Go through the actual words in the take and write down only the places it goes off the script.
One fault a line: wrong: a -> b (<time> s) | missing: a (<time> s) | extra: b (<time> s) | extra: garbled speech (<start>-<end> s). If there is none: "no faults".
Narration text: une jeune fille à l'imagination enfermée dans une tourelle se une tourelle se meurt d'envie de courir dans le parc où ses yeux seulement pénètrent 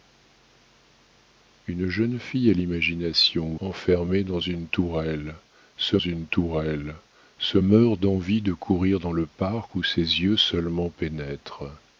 no faults